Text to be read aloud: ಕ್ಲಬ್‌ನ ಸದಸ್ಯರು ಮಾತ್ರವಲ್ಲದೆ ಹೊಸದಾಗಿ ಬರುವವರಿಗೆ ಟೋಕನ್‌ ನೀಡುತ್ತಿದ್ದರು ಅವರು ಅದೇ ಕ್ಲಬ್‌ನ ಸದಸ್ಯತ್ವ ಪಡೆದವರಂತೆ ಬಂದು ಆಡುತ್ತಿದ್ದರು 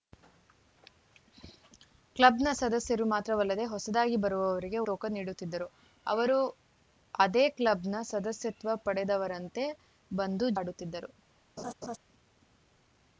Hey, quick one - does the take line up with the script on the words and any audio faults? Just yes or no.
no